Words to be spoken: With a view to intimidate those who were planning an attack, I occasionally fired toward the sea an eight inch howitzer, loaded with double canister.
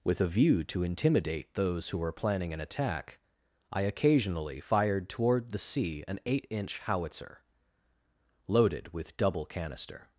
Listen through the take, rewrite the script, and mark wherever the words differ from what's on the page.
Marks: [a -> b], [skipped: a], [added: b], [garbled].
With a view to intimidate those who were planning an attack, I occasionally fired toward the sea an eight inch howitzer, loaded with double canister.